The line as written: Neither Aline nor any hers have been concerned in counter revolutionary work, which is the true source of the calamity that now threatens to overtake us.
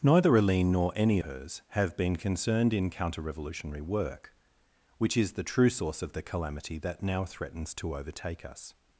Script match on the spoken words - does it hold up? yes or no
yes